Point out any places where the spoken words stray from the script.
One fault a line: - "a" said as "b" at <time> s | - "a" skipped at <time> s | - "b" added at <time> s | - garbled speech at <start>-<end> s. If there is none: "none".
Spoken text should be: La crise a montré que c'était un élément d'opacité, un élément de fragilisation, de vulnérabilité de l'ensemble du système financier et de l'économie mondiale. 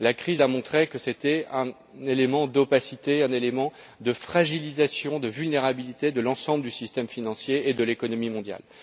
none